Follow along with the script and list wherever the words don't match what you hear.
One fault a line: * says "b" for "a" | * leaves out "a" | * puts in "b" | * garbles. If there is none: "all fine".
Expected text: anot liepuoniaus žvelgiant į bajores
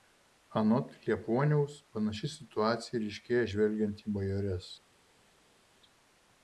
* puts in "panaši situacija ryškėja"